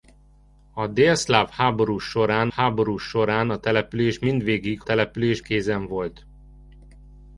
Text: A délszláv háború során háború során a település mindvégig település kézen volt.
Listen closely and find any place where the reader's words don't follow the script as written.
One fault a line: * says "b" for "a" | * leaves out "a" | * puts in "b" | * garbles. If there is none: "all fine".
all fine